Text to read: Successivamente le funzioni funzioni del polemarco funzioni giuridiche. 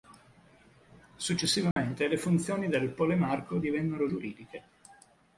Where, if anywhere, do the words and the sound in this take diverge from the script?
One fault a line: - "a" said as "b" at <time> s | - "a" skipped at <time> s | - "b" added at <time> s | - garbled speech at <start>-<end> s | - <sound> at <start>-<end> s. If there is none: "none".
- dropout at 1.7-1.8 s
- "funzioni" skipped at 2.7 s
- "funzioni" said as "divennero" at 3.6 s